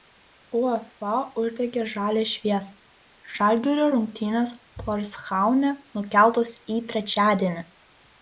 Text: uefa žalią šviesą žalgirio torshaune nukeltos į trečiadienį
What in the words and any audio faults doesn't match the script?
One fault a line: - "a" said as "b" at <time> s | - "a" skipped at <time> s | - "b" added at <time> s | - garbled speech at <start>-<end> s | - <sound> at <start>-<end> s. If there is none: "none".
- "uždegė" added at 1.4 s
- "rungtynės" added at 4.0 s